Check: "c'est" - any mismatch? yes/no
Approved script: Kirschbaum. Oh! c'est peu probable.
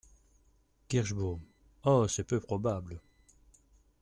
no